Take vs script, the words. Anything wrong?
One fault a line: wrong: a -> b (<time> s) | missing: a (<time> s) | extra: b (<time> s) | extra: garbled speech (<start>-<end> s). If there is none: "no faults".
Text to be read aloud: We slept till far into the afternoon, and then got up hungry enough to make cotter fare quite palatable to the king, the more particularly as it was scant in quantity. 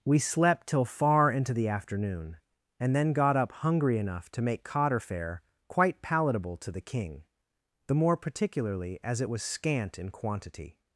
no faults